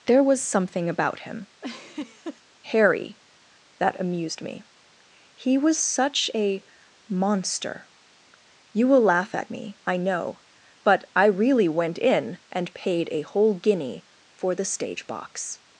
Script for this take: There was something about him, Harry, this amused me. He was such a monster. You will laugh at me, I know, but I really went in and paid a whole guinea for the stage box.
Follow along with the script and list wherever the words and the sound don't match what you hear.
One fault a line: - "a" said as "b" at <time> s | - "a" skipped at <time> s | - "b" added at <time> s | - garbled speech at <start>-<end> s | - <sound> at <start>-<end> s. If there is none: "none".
- laugh at 1.6-2.4 s
- "this" said as "that" at 3.8 s